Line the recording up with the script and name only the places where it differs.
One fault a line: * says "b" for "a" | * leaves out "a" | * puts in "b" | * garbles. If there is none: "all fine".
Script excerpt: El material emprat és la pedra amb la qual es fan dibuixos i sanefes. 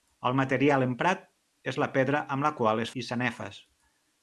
* leaves out "fan dibuixos"